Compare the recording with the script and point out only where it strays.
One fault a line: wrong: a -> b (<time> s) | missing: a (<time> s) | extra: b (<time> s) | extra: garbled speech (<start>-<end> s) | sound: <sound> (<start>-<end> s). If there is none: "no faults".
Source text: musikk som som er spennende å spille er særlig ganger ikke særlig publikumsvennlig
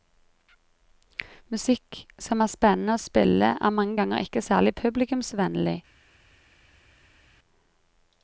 missing: som (2.4 s)
wrong: særlig -> mange (3.8 s)